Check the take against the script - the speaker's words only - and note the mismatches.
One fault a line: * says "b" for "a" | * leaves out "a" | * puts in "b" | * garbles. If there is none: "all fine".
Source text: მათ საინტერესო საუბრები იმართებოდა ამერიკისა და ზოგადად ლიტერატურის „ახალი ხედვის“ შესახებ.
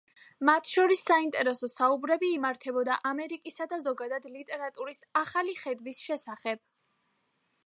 * puts in "შორის"